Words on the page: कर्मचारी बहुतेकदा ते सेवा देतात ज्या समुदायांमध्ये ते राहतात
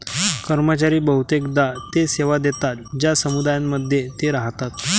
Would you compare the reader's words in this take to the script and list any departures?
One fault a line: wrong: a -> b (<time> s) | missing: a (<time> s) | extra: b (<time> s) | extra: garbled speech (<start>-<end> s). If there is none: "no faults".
no faults